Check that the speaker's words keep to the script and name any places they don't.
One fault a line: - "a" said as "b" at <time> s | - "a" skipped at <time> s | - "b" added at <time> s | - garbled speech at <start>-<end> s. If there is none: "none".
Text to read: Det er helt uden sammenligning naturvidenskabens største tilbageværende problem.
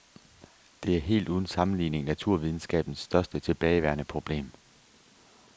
none